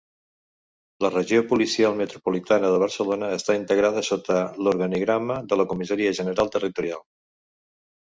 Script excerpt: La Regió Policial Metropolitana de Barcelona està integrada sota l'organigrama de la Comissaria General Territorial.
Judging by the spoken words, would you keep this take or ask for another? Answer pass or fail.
pass